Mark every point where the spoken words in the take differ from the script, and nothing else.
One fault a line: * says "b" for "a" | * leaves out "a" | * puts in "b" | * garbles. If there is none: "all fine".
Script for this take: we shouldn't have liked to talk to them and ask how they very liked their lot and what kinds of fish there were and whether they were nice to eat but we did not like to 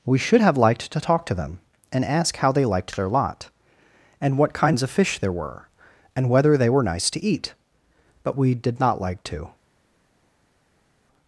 * says "should" for "shouldn't"
* leaves out "very"